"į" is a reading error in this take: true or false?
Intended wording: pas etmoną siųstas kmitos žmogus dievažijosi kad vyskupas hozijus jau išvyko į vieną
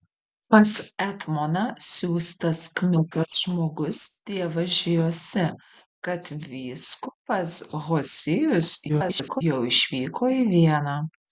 false